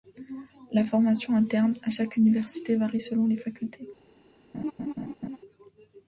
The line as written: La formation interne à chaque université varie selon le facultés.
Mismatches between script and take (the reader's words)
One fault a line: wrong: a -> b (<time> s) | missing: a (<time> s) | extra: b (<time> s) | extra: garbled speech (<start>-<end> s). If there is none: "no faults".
wrong: le -> les (3.3 s)